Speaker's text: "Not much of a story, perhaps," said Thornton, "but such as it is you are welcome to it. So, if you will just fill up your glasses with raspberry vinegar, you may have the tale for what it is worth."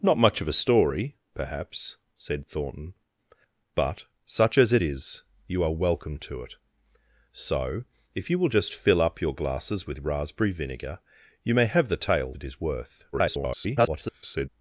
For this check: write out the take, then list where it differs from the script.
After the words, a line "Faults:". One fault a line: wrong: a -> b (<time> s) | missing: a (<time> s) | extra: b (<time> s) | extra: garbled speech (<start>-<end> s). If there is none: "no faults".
"Not much of a story, perhaps," said Thornton, "but such as it is you are welcome to it. So, if you will just fill up your glasses with raspberry vinegar, you may have the tale it is worth." [garbled]
Faults:
missing: for what (12.3 s)
extra: garbled speech (13.1-14.5 s)